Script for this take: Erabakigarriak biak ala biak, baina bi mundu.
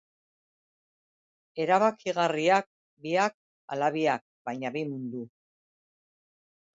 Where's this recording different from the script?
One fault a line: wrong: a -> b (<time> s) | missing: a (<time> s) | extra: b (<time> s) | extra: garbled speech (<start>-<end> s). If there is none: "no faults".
no faults